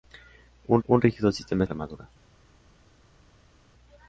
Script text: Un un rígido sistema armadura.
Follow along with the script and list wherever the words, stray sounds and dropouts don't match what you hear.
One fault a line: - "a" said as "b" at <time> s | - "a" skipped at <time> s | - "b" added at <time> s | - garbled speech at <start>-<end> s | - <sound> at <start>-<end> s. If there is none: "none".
none